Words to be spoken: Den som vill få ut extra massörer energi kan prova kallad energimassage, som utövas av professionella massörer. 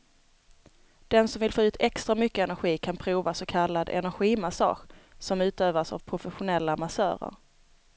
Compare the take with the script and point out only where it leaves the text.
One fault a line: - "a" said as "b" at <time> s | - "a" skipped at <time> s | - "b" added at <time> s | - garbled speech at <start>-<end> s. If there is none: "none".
- "massörer" said as "mycket" at 2.2 s
- "så" added at 3.3 s